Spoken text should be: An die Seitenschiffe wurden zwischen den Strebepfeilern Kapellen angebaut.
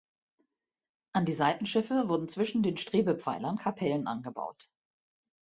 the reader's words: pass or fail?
pass